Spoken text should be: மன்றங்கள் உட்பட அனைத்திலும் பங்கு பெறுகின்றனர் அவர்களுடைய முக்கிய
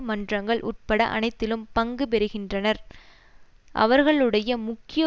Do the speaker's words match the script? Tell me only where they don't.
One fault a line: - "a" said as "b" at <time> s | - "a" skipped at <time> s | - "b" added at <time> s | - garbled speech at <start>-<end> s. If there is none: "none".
none